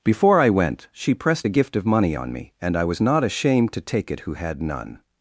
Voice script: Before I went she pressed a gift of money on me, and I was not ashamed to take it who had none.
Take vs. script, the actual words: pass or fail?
pass